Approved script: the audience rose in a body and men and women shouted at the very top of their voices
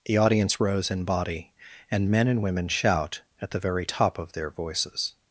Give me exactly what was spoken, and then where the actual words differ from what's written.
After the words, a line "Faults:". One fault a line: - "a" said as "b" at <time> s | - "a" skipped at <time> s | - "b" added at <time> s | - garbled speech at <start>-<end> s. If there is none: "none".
the audience rose in body and men and women shout at the very top of their voices
Faults:
- "a" skipped at 1.0 s
- "shouted" said as "shout" at 2.7 s